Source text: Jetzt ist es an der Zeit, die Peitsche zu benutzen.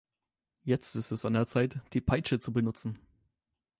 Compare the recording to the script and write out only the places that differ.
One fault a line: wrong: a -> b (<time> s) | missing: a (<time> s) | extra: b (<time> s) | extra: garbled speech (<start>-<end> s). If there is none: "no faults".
no faults